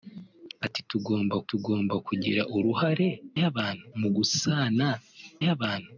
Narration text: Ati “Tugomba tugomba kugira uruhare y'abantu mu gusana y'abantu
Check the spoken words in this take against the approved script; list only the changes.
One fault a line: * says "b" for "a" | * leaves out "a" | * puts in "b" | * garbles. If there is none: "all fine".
all fine